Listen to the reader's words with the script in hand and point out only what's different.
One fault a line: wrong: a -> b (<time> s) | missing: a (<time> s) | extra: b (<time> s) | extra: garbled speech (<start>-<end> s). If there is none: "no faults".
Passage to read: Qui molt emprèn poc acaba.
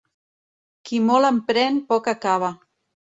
no faults